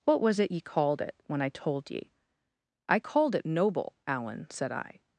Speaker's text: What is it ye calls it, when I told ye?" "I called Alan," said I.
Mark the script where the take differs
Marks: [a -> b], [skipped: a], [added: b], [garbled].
What [is -> was] it ye [calls -> called] it, when I told ye?" "I called [added: it noble] Alan," said I.